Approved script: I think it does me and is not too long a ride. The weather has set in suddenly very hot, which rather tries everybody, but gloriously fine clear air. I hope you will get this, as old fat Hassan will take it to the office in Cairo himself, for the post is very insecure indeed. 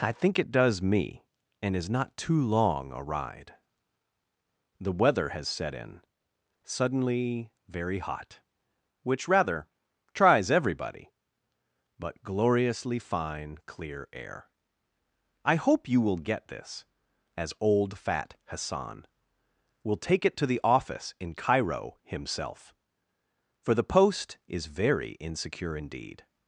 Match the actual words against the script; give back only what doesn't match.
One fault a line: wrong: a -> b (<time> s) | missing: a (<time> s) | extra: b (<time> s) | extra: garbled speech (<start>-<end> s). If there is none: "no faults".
no faults